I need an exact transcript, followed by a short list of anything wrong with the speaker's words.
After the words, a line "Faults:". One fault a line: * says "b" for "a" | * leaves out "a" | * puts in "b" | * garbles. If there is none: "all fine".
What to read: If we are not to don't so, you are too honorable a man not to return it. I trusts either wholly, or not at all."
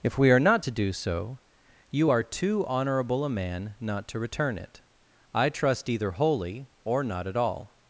If we are not to do so, you are too honorable a man not to return it. I trust either wholly, or not at all."
Faults:
* says "do" for "don't"
* says "trust" for "trusts"